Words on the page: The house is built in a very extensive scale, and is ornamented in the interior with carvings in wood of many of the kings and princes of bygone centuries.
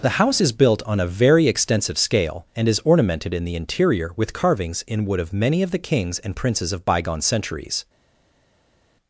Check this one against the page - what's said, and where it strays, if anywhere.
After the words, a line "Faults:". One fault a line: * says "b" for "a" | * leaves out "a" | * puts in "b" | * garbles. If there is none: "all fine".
The house is built on a very extensive scale, and is ornamented in the interior with carvings in wood of many of the kings and princes of bygone centuries.
Faults:
* says "on" for "in"